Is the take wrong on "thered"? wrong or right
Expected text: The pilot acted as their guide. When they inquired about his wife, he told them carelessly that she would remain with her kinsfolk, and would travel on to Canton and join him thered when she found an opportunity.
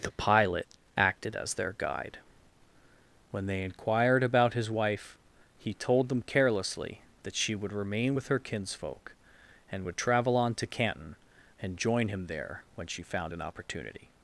wrong